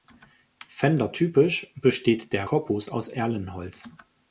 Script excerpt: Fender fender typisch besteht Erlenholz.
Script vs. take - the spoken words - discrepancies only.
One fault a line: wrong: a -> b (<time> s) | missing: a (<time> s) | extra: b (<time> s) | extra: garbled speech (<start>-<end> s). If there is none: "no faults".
missing: fender (1.1 s)
extra: der Korpus aus (2.3 s)